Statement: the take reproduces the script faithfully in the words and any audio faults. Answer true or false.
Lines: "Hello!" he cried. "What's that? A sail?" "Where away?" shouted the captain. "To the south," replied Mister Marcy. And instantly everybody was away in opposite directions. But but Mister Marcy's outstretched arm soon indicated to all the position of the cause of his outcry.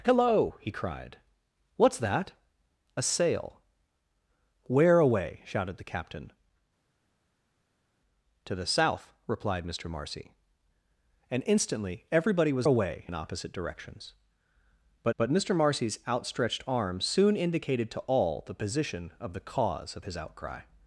true